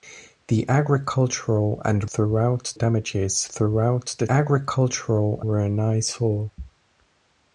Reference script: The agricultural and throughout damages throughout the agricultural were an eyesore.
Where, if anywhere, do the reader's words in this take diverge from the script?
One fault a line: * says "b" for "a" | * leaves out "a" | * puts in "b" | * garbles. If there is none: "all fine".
all fine